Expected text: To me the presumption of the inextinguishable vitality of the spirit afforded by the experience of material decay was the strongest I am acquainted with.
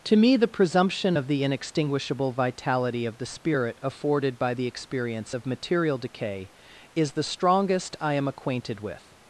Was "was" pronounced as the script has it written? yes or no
no